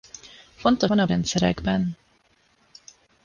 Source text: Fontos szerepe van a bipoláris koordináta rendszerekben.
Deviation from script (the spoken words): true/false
true